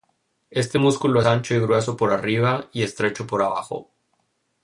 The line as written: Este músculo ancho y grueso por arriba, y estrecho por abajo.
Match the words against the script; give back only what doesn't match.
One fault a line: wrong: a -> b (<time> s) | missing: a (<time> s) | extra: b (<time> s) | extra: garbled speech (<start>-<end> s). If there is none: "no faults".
no faults